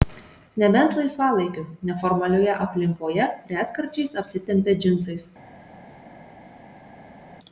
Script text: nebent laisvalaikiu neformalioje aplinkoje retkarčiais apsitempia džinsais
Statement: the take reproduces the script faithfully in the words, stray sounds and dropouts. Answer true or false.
true